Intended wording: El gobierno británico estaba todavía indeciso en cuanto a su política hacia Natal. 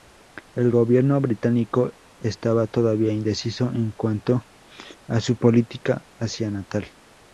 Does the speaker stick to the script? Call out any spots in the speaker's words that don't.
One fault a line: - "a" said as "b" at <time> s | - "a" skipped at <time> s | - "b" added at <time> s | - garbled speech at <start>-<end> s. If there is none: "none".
none